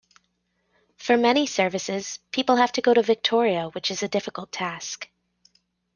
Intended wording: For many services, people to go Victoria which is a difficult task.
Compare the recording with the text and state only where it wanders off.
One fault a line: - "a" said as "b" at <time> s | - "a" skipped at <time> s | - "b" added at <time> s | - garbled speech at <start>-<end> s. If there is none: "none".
- "have" added at 2.5 s
- "to" added at 2.9 s